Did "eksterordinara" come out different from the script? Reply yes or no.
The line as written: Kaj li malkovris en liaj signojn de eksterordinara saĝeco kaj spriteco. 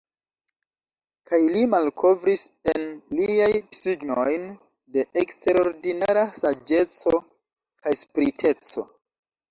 no